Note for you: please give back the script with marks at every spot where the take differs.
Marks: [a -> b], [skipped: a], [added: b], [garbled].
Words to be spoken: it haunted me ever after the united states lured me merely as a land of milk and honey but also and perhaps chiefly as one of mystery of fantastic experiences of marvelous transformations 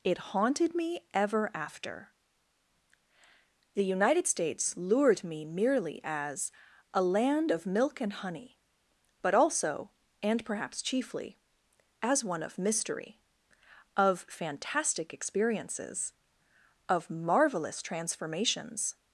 it haunted me ever after the united states lured me merely as a land of milk and honey but also and perhaps chiefly as one of mystery of fantastic experiences of marvelous transformations